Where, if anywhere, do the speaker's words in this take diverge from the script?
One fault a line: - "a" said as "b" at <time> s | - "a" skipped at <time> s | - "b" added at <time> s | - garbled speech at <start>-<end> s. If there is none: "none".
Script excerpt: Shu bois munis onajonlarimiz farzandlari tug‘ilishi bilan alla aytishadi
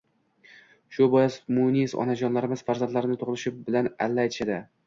none